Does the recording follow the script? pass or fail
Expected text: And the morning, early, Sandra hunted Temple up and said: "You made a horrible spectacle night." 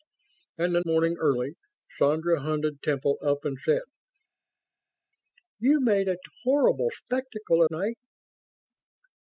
pass